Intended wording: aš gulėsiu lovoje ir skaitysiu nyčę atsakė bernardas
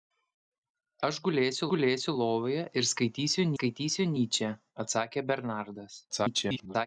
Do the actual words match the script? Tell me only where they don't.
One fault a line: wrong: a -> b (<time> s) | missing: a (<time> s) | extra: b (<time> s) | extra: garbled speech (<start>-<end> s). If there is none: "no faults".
extra: gulėsiu (1.7 s)
extra: skaitysiu (3.5 s)
extra: garbled speech (6.1-6.9 s)